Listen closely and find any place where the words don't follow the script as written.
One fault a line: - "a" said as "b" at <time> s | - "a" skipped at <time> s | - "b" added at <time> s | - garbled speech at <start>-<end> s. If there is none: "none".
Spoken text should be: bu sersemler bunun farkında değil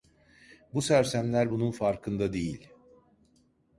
none